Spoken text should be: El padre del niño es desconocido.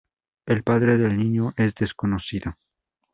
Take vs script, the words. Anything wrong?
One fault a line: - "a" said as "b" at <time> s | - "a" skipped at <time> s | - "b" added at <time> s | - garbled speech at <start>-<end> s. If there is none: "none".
none